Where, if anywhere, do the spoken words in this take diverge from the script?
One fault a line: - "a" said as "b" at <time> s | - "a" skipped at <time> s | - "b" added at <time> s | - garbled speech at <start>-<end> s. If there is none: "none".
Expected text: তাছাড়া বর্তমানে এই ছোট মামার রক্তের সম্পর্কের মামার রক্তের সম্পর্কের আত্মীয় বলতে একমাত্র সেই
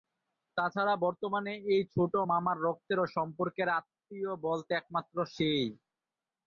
- "মামার রক্তের সম্পর্কের" skipped at 3.7 s